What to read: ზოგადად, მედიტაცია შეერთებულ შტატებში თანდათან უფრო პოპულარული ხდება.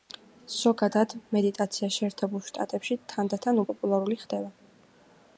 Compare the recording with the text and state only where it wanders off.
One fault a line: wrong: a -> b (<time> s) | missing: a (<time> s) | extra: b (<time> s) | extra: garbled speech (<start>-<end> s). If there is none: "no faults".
missing: უფრო (3.6 s)